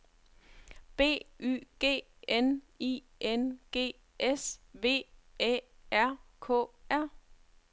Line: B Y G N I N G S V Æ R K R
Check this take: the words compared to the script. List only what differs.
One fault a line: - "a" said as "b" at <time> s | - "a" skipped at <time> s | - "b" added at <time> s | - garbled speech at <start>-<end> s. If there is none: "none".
none